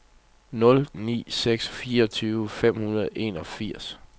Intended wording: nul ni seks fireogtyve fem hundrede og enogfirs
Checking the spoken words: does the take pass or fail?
pass